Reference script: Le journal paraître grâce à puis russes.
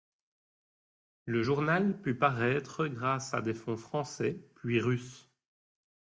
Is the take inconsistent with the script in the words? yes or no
yes